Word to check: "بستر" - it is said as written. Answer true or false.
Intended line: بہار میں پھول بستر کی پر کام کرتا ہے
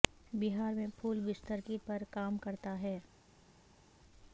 true